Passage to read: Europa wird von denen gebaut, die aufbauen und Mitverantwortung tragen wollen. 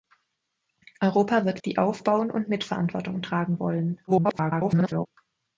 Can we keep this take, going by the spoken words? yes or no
no